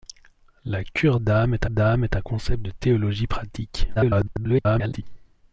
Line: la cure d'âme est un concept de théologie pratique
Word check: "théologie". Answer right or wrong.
right